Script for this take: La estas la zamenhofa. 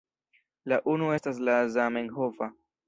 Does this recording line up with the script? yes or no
no